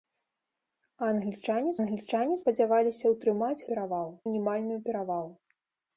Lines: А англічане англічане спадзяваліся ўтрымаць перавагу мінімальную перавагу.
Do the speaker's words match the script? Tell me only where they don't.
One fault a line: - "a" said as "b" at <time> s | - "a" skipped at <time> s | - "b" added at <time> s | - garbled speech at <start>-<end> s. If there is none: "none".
none